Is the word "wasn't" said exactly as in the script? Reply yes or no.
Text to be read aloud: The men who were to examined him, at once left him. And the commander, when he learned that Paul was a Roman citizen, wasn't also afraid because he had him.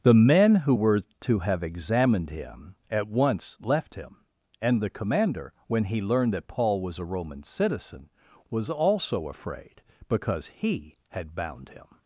no